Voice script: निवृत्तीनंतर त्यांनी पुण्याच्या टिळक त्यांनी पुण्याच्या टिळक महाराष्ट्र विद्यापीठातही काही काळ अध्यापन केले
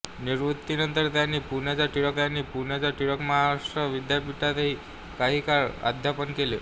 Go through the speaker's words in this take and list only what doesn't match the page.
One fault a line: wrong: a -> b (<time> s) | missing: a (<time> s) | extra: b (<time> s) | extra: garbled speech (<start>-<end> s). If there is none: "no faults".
no faults